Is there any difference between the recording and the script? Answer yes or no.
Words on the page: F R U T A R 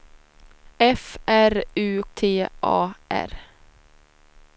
no